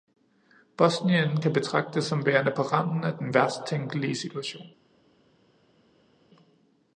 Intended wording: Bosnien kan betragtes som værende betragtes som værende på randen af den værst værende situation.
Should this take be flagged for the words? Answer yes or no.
yes